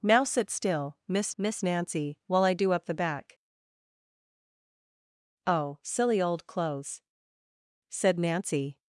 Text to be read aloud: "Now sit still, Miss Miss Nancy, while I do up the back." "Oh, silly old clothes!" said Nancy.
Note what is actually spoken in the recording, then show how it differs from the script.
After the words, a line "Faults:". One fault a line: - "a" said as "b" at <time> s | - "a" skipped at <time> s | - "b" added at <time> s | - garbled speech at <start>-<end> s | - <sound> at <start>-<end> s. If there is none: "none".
"Now sit still, Miss Miss Nancy, while I do up the back." "Oh, silly old clothes!" said Nancy.
Faults:
none